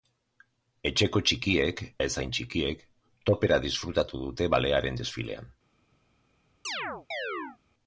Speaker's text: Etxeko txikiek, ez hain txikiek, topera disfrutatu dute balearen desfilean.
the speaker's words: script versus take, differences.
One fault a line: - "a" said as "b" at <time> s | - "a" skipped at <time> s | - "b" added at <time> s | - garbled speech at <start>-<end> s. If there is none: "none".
none